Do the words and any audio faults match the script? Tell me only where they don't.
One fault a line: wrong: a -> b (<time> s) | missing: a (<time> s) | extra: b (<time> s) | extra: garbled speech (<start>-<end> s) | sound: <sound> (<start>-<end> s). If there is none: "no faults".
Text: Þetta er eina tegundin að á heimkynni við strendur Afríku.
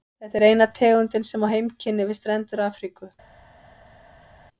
wrong: að -> sem (1.3 s)